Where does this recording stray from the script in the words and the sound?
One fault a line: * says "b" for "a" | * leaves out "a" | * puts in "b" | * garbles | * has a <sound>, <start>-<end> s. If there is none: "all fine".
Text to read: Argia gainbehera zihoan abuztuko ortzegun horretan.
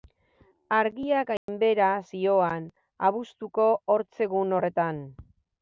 * has a dropout, 1.4-1.5 s